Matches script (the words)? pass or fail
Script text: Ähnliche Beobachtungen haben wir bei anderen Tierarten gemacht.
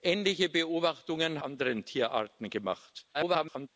fail